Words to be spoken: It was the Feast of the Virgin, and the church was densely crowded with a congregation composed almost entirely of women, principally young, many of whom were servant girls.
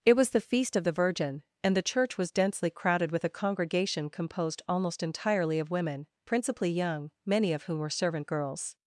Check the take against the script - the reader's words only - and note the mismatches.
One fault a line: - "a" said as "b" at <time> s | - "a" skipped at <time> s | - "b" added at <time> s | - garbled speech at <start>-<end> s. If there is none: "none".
none